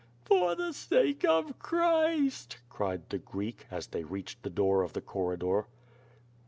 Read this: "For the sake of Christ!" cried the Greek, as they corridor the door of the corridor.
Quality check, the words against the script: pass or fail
fail